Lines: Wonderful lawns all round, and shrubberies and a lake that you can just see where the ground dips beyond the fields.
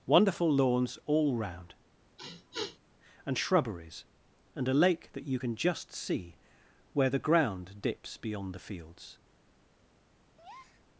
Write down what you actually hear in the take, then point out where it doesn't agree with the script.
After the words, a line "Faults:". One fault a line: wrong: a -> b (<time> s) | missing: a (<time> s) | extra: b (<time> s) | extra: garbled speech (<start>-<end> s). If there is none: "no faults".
Wonderful lawns all round, and shrubberies and a lake that you can just see where the ground dips beyond the fields.
Faults:
no faults